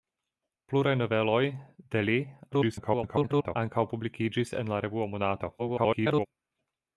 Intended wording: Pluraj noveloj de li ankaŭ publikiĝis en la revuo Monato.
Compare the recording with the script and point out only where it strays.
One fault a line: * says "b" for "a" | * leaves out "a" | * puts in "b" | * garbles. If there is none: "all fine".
* garbles
* garbles